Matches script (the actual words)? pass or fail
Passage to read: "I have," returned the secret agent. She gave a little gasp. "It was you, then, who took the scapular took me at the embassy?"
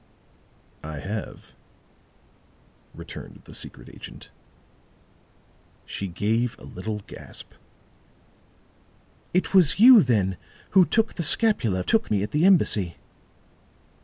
pass